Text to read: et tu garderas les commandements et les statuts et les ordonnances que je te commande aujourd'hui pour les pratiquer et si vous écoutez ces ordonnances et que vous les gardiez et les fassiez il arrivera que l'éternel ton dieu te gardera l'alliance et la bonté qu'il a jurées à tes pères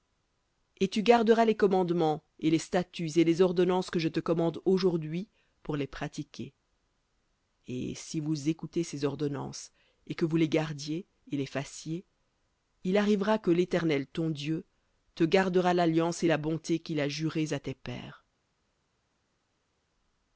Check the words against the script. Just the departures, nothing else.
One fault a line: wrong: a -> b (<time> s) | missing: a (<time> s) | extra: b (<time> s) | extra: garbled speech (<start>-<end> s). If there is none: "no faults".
no faults